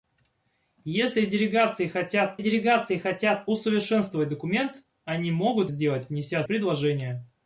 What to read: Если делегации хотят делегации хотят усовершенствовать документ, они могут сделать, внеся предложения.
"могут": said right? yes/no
yes